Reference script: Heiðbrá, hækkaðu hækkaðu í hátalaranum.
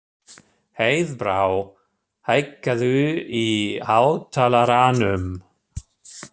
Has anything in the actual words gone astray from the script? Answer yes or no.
yes